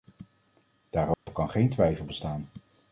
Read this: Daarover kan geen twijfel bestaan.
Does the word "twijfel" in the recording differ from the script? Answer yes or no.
no